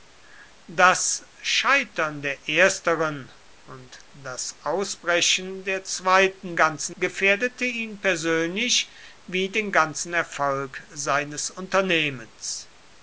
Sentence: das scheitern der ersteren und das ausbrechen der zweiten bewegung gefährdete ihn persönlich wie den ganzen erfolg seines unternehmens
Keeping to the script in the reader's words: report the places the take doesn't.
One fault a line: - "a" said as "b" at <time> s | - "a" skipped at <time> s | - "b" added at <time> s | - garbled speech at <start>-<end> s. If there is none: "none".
- "bewegung" said as "ganzen" at 6.5 s